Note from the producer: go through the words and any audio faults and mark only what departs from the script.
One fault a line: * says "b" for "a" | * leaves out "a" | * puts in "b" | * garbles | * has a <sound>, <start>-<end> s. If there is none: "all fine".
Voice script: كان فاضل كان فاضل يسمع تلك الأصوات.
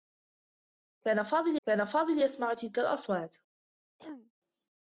* has a throat clearing, 4.0-4.3 s